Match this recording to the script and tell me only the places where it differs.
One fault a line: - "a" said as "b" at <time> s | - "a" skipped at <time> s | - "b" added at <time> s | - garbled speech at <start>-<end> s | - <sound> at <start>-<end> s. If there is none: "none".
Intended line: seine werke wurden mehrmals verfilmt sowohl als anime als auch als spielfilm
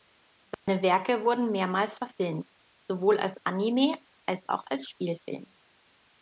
- dropout at 0.5-0.7 s